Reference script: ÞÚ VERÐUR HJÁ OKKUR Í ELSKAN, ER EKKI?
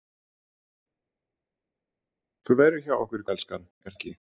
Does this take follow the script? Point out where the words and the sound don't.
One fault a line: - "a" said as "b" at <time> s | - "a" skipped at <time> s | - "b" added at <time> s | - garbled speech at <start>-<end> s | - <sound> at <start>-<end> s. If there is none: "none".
none